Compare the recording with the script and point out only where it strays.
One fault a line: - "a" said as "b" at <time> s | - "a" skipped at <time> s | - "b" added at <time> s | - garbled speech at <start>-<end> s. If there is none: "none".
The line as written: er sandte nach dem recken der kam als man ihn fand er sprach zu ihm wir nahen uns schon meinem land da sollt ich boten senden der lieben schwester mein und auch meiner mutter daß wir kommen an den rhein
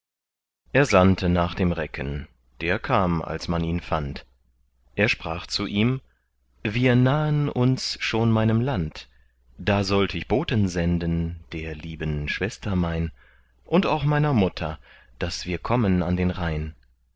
none